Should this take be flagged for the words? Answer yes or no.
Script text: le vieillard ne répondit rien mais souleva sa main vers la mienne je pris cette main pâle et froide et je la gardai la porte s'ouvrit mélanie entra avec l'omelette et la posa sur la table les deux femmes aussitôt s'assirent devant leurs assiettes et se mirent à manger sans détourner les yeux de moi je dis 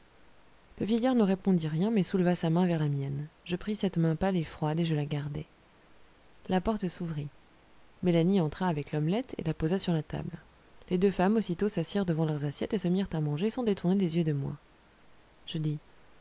no